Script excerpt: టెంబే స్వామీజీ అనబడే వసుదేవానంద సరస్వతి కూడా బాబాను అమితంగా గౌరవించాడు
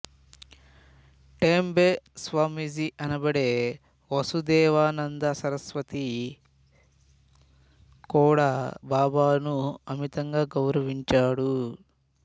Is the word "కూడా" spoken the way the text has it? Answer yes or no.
yes